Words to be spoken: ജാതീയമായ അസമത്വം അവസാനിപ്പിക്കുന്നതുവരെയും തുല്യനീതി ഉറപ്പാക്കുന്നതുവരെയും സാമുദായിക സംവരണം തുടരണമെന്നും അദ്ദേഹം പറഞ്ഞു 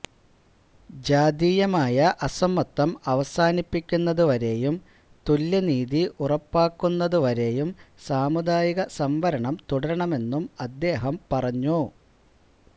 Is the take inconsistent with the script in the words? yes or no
no